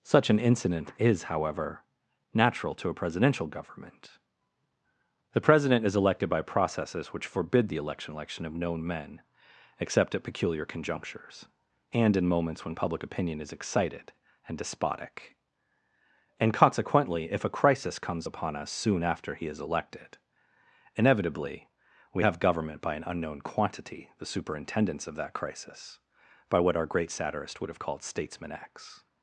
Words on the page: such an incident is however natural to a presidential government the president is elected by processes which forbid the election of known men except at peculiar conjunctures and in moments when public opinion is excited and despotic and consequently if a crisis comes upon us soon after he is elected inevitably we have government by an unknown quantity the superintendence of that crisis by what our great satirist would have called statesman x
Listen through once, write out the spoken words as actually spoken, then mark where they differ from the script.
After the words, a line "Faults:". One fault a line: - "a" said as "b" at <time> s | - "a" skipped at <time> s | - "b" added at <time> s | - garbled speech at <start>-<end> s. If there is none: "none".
such an incident is however natural to a presidential government the president is elected by processes which forbid the election election of known men except at peculiar conjunctures and in moments when public opinion is excited and despotic and consequently if a crisis comes upon us soon after he is elected inevitably we have government by an unknown quantity the superintendence of that crisis by what our great satirist would have called statesman x
Faults:
- "election" added at 8.2 s